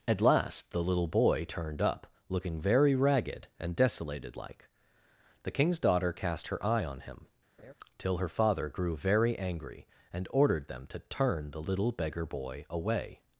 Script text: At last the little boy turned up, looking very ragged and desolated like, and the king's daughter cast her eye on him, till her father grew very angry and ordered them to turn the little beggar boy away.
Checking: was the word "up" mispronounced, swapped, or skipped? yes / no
no